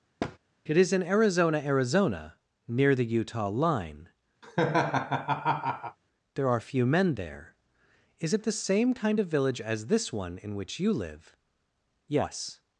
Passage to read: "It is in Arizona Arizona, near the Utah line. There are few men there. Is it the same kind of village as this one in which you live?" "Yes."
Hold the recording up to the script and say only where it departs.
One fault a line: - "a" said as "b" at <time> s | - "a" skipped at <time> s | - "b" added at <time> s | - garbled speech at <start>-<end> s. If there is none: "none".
none